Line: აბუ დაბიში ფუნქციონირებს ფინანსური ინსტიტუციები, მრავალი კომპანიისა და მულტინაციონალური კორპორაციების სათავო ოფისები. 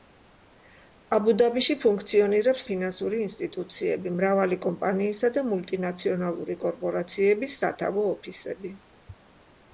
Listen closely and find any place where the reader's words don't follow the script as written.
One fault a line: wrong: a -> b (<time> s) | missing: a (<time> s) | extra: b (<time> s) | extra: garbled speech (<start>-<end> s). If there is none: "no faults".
no faults